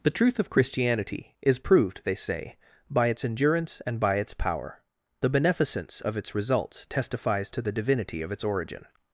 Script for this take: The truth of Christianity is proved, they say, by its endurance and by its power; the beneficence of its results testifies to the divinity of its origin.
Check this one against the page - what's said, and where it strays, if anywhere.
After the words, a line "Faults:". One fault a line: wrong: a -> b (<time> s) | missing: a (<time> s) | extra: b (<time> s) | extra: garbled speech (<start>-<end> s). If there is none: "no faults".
The truth of Christianity is proved, they say, by its endurance and by its power; the beneficence of its results testifies to the divinity of its origin.
Faults:
no faults